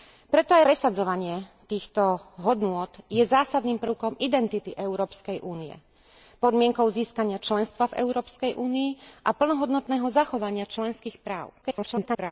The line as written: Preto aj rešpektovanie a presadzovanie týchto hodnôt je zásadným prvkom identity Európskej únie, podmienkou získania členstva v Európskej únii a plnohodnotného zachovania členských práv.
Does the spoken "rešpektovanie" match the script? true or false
false